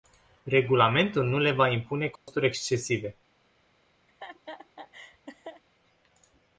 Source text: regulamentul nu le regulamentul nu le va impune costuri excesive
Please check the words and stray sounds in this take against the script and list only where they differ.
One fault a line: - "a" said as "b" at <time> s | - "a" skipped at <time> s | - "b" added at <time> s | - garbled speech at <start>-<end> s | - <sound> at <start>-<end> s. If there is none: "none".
- "regulamentul nu le" skipped at 1.5 s
- dropout at 2.2-2.3 s
- laugh at 4.1-5.6 s